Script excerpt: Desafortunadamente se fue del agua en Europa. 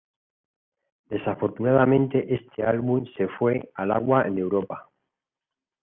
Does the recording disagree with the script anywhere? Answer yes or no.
yes